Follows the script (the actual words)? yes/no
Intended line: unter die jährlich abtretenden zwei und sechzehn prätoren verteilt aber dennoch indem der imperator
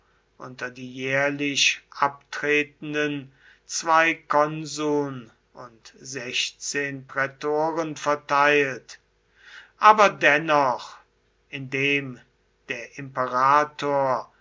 no